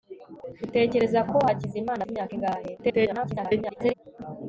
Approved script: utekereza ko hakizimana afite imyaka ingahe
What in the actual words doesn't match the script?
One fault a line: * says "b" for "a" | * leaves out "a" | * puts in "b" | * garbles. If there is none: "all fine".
* leaves out "afite"
* garbles